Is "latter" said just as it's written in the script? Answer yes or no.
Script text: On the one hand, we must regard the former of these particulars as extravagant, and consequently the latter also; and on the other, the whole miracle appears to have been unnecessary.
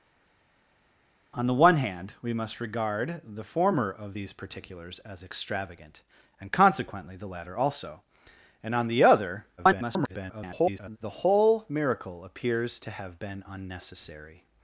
yes